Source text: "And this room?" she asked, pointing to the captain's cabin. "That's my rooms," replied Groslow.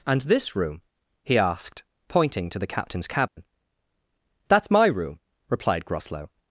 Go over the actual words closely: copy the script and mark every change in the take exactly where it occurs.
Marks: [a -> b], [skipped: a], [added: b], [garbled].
"And this room?" [she -> he] asked, pointing to the captain's cabin. "That's my [rooms," -> room] replied Groslow.